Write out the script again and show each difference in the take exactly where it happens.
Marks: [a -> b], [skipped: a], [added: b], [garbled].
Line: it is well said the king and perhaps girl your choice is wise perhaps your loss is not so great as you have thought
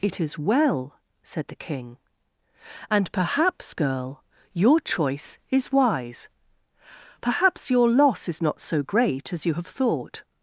it is well said the king and perhaps girl your choice is wise perhaps your loss is not so great as you have thought